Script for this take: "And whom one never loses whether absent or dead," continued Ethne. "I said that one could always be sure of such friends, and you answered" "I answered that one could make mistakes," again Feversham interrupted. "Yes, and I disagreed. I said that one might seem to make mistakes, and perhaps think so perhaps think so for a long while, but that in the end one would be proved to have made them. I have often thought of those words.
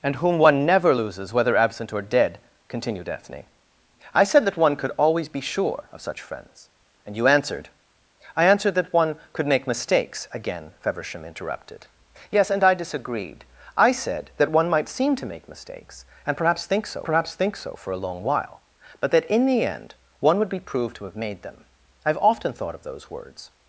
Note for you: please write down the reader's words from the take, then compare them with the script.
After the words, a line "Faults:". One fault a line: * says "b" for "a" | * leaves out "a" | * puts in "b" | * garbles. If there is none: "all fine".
"And whom one never loses whether absent or dead," continued Ethne. "I said that one could always be sure of such friends, and you answered" "I answered that one could make mistakes," again Feversham interrupted. "Yes, and I disagreed. I said that one might seem to make mistakes, and perhaps think so perhaps think so for a long while, but that in the end one would be proved to have made them. I have often thought of those words.
Faults:
all fine